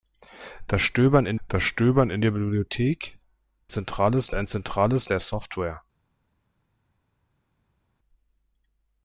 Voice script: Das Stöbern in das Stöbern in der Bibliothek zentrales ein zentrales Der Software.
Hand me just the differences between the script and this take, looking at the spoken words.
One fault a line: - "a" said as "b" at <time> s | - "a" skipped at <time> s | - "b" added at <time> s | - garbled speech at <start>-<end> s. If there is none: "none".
none